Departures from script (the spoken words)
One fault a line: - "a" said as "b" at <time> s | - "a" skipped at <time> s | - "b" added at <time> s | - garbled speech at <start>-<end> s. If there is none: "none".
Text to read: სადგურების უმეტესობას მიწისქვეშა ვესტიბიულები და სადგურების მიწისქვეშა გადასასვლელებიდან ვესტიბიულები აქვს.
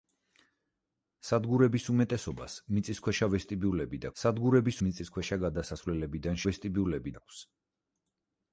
none